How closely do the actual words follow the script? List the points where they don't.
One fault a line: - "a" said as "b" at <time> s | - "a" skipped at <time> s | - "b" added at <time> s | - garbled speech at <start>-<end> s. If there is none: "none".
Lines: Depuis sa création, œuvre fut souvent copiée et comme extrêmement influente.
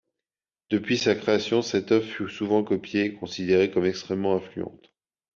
- "cette" added at 1.6 s
- "considérée" added at 3.1 s